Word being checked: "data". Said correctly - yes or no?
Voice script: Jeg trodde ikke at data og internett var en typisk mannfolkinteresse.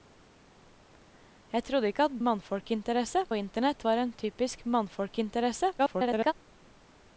no